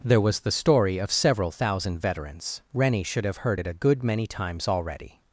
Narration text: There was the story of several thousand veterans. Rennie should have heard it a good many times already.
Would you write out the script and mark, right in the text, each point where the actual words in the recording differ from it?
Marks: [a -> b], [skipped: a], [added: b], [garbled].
There was the story of several thousand veterans. Rennie should have heard it a good many times already.